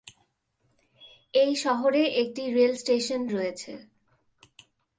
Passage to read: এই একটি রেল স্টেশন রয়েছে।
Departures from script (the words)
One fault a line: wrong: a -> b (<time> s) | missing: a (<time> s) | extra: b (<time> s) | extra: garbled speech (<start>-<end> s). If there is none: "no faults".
extra: শহরে (1.6 s)